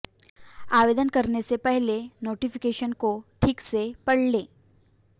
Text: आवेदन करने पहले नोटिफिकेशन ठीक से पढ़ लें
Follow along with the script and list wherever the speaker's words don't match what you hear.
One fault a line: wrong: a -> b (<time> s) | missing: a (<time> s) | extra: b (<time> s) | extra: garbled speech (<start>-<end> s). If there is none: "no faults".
extra: से (1.4 s)
extra: को (2.9 s)